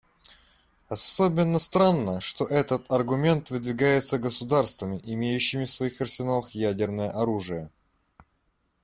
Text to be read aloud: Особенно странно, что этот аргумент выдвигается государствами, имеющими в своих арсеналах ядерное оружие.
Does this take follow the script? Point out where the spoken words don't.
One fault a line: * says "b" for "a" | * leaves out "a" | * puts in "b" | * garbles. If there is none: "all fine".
all fine